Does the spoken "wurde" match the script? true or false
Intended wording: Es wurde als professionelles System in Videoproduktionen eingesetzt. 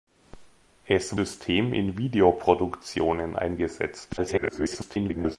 false